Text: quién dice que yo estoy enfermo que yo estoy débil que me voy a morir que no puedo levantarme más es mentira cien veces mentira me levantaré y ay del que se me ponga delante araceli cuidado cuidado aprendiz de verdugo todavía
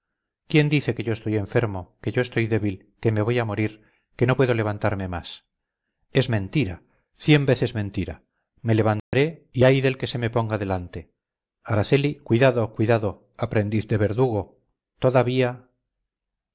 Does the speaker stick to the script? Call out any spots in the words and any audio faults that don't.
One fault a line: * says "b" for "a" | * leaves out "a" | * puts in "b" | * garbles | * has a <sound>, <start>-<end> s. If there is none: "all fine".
* has a dropout, 9.0-9.1 s